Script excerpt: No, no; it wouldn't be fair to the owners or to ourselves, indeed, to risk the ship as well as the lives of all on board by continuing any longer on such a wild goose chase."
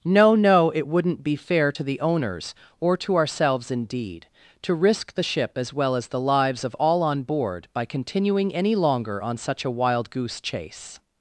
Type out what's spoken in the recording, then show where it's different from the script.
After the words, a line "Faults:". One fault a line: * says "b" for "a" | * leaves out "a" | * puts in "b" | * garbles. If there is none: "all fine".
No, no; it wouldn't be fair to the owners or to ourselves, indeed, to risk the ship as well as the lives of all on board by continuing any longer on such a wild goose chase."
Faults:
all fine